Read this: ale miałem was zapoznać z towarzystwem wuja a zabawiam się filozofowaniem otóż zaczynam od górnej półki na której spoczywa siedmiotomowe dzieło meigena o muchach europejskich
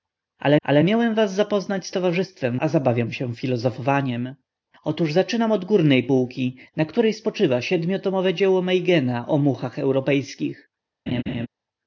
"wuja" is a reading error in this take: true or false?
true